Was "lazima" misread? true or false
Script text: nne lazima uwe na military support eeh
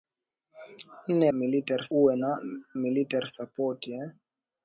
true